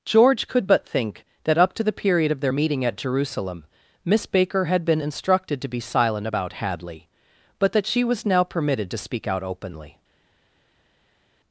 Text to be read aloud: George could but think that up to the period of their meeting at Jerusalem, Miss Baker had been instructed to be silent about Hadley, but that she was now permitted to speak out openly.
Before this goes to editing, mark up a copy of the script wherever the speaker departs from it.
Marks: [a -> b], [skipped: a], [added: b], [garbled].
George could but think that up to the period of their meeting at Jerusalem, Miss Baker had been instructed to be silent about Hadley, but that she was now permitted to speak out openly.